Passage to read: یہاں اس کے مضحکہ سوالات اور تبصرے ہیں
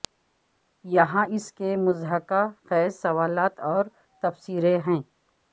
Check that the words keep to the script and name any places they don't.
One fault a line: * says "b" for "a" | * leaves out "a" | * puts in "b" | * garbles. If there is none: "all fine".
* puts in "خیز"